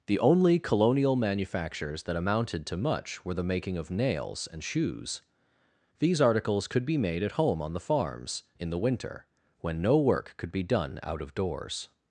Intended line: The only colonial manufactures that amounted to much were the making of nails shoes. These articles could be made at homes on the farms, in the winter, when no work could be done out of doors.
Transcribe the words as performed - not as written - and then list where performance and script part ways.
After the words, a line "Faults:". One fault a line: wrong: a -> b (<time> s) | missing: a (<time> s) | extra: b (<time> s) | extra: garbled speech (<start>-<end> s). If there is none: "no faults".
The only colonial manufactures that amounted to much were the making of nails and shoes. These articles could be made at home on the farms, in the winter, when no work could be done out of doors.
Faults:
extra: and (4.5 s)
wrong: homes -> home (7.3 s)